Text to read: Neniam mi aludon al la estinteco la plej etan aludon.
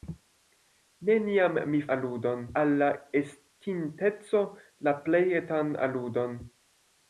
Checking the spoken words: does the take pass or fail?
pass